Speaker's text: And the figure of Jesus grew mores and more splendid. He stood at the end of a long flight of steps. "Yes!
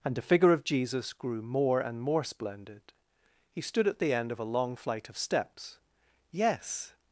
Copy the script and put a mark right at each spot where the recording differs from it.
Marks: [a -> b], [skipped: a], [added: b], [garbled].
And the figure of Jesus grew [mores -> more] and more splendid. He stood at the end of a long flight of steps. "Yes!